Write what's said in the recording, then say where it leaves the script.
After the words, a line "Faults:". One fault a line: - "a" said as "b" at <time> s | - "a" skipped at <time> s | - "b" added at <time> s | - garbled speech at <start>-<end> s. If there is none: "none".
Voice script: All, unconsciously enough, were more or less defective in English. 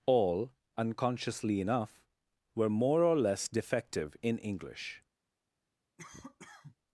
All, unconsciously enough, were more or less defective in English.
Faults:
none